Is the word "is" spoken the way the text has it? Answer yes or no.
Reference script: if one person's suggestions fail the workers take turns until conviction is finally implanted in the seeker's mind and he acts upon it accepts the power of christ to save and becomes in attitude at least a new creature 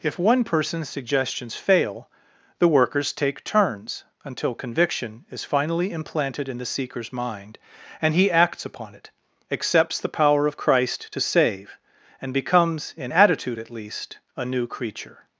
yes